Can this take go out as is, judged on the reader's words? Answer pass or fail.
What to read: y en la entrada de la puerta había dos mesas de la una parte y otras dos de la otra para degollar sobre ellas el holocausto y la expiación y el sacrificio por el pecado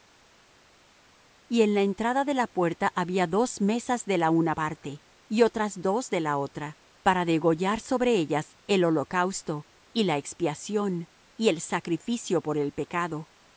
pass